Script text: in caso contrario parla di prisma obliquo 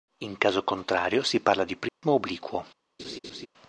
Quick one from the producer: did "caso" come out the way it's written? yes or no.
yes